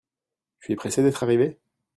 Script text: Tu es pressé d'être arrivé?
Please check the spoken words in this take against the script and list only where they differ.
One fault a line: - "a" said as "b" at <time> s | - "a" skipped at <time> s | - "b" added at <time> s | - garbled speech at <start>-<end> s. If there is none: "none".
none